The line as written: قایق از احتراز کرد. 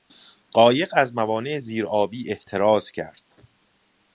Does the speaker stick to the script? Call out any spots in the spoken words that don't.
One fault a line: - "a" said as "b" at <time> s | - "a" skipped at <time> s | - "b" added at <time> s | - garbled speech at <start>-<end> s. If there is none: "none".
- "موانع زیر آبی" added at 1.1 s